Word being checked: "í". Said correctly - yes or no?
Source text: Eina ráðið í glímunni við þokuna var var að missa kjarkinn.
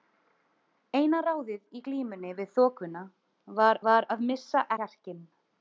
yes